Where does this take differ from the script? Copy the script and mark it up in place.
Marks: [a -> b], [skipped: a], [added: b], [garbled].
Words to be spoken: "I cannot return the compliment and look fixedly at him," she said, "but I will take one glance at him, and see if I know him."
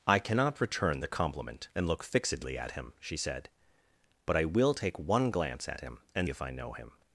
"I cannot return the compliment and look fixedly at him," she said, "but I will take one glance at him, and [skipped: see] if I know him."